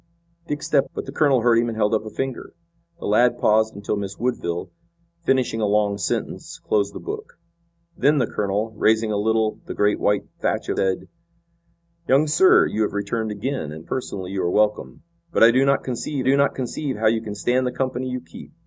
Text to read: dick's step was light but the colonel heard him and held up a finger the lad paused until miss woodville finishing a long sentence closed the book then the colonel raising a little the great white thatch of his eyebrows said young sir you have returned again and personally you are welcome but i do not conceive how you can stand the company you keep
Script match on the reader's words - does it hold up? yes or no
no